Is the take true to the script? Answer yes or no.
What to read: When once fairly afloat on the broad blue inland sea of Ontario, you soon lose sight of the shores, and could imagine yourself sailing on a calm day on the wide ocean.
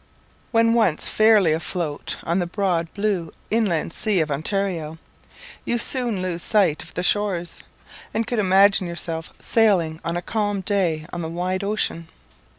yes